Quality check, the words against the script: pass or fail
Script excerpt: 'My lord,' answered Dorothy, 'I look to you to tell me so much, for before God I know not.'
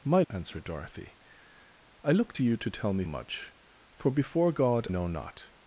fail